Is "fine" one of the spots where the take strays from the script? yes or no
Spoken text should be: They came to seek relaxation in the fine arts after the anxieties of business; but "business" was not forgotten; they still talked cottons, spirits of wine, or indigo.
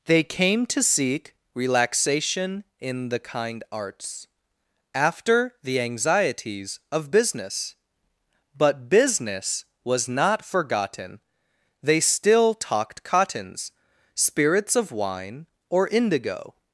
yes